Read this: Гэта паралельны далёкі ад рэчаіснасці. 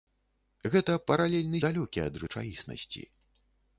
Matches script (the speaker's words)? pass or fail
pass